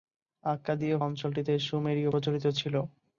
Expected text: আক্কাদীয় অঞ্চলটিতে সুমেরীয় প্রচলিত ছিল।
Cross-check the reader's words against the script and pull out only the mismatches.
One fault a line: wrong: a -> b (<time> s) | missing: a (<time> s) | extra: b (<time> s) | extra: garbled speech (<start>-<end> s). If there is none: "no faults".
no faults